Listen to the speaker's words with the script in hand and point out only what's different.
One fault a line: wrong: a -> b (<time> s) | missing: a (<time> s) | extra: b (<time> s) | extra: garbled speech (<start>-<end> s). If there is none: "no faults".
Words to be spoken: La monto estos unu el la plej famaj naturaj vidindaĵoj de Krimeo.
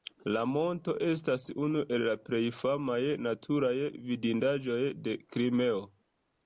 wrong: estos -> estas (1.1 s)